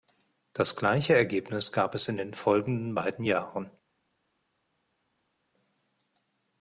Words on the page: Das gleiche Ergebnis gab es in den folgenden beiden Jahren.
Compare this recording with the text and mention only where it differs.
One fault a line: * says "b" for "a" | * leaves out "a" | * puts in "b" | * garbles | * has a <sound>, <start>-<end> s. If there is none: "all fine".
all fine